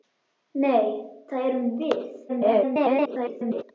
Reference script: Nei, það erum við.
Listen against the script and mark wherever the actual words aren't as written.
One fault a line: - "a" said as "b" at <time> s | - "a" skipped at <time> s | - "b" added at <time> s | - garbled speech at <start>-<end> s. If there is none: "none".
- garbled speech at 2.3-3.6 s